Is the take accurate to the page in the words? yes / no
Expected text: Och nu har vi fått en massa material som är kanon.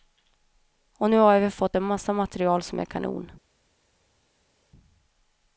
yes